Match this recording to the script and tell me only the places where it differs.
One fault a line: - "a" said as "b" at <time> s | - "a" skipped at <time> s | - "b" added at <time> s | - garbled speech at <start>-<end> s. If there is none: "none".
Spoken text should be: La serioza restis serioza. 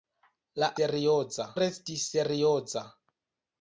none